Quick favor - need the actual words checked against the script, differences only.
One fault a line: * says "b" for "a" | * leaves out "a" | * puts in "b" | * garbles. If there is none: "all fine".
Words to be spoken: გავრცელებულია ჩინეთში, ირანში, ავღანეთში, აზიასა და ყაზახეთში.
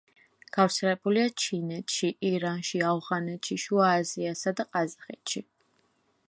* puts in "შუა"